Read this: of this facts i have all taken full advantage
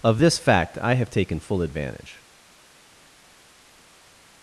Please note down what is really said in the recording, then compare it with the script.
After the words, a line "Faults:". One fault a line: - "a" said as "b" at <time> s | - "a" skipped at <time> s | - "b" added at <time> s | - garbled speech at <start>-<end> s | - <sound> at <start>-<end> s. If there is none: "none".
of this fact i have taken full advantage
Faults:
- "facts" said as "fact" at 0.4 s
- "all" skipped at 1.1 s